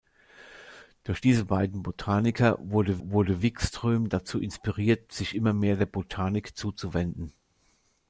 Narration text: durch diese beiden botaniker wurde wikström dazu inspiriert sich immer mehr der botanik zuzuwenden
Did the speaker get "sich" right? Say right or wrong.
right